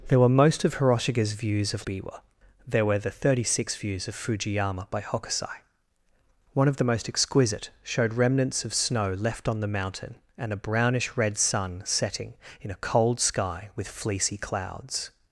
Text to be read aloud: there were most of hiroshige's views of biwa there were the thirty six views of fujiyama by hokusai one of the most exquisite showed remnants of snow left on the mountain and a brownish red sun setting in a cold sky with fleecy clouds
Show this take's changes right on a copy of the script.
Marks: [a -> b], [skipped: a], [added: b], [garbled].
there were most of hiroshige's views of biwa there were the thirty six views of fujiyama by hokusai one of the most exquisite showed remnants of snow left on the mountain and a brownish red sun setting in a cold sky with fleecy clouds